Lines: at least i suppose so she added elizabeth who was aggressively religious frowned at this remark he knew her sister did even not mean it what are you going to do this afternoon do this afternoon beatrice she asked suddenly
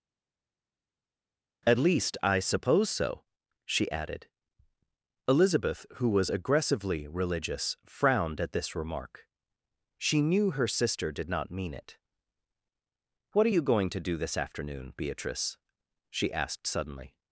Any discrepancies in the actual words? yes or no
yes